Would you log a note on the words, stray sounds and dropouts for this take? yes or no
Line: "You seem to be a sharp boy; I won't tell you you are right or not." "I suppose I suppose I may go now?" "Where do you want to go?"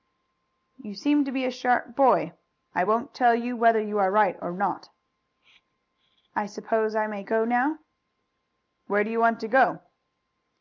yes